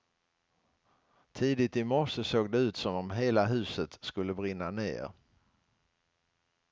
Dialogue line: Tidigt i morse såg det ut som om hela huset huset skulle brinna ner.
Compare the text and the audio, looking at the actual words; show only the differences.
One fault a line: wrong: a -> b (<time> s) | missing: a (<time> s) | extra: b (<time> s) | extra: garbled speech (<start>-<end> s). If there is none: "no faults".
missing: huset (4.0 s)